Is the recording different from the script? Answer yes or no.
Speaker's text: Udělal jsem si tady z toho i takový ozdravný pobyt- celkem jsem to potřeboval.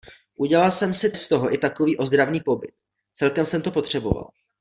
yes